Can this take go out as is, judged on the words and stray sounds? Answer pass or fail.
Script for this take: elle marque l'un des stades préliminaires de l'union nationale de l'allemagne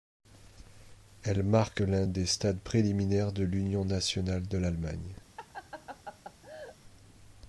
fail